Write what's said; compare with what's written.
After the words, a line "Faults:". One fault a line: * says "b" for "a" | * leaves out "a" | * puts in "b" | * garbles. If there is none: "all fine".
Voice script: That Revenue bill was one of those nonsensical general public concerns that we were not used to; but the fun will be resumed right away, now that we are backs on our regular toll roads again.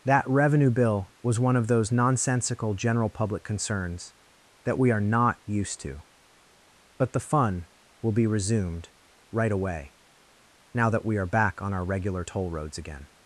That Revenue bill was one of those nonsensical general public concerns that we are not used to; but the fun will be resumed right away, now that we are back on our regular toll roads again.
Faults:
* says "are" for "were"
* says "back" for "backs"